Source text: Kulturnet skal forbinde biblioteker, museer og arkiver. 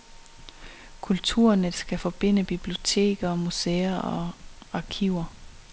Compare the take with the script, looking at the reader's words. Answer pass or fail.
pass